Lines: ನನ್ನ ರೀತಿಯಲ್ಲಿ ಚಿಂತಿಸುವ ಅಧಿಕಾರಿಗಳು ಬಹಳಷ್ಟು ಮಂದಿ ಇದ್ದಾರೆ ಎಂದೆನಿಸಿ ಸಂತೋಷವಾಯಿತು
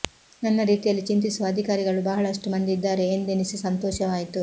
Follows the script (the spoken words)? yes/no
yes